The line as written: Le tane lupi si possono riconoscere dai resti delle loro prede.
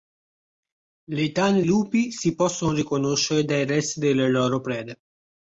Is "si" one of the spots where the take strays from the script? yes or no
no